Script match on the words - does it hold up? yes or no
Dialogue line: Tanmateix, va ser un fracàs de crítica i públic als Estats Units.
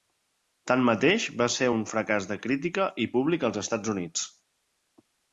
yes